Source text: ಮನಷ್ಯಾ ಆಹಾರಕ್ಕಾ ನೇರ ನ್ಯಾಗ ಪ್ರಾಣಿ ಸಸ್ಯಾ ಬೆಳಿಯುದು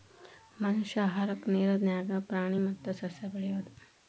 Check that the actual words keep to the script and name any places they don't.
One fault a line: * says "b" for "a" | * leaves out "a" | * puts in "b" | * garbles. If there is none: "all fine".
* puts in "ಮತ್ತ"